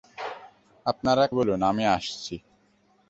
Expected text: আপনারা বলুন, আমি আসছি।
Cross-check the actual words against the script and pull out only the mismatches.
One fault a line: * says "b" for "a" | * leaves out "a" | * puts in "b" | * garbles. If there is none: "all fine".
all fine